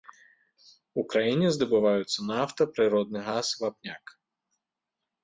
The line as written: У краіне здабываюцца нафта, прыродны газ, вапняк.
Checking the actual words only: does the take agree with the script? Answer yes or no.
yes